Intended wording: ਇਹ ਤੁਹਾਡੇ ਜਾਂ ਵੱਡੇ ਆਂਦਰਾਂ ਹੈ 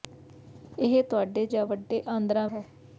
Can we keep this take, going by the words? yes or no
yes